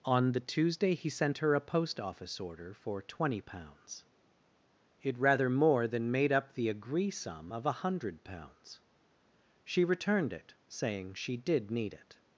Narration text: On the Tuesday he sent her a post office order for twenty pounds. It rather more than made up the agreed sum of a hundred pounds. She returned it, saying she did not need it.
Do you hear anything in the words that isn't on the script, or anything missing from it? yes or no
yes